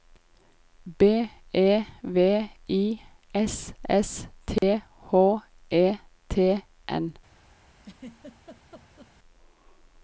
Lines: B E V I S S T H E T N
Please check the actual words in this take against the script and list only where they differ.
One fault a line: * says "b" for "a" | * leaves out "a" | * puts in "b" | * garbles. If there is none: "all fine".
all fine